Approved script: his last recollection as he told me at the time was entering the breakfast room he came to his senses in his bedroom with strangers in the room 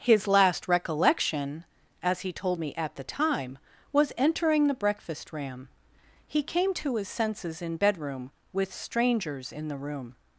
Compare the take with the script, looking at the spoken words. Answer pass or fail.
fail